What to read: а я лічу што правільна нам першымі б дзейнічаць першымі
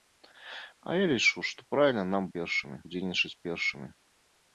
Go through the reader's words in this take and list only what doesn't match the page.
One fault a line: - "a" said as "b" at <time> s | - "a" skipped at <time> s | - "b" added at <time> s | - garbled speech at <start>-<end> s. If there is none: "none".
none